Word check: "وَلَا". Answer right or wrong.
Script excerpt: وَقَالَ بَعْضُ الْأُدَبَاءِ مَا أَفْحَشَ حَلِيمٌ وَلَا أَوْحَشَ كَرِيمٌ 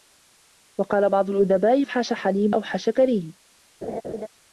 wrong